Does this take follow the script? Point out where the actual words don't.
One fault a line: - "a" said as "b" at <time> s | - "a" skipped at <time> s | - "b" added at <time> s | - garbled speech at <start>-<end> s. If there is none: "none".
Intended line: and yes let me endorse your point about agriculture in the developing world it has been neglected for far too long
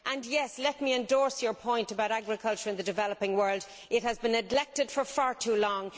none